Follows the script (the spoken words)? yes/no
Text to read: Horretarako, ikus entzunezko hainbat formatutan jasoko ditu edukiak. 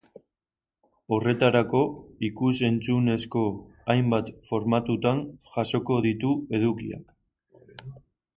yes